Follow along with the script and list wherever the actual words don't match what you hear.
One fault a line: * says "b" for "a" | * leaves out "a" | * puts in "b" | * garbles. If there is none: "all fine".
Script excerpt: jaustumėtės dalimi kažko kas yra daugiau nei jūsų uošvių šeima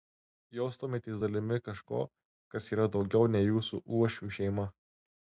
all fine